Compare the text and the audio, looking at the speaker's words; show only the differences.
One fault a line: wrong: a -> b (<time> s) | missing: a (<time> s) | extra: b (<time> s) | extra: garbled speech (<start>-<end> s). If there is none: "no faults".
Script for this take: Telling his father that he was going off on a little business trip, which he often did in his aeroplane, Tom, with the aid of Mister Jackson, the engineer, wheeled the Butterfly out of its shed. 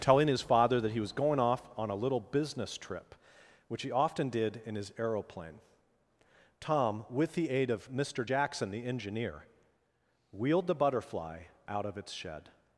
no faults